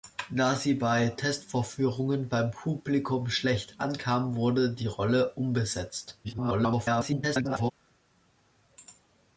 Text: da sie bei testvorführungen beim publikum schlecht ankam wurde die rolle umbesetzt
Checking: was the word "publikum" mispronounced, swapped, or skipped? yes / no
no